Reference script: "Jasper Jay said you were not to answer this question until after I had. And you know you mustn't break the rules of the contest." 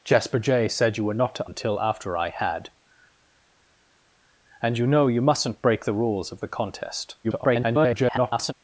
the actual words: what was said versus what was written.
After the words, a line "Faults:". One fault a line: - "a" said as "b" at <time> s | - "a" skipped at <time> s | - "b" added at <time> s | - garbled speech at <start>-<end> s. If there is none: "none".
"Jasper Jay said you were not to until after I had. And you know you mustn't break the rules of the contest." [garbled]
Faults:
- "answer this question" skipped at 1.5 s
- garbled speech at 7.2-8.5 s